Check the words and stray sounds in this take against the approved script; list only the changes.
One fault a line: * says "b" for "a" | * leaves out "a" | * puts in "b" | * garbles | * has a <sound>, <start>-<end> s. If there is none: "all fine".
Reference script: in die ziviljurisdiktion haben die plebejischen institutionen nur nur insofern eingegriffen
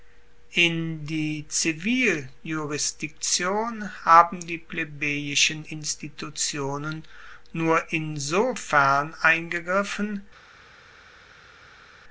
* leaves out "nur"